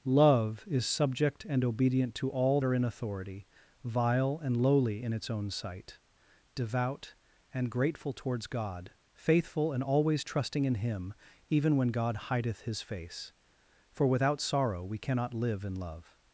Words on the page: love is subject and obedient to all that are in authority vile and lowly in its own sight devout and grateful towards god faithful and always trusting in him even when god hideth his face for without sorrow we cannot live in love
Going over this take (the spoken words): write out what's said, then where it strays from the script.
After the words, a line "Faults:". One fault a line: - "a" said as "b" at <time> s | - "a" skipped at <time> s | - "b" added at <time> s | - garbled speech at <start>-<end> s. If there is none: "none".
love is subject and obedient to all are in authority vile and lowly in its own sight devout and grateful towards god faithful and always trusting in him even when god hideth his face for without sorrow we cannot live in love
Faults:
- "that" skipped at 2.6 s